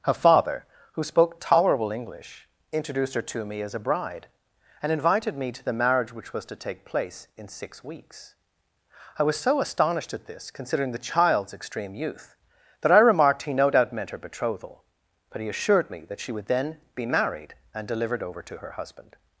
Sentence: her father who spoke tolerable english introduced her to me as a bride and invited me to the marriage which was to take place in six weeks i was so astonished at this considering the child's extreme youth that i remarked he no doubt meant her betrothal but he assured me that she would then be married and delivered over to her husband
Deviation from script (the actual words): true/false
false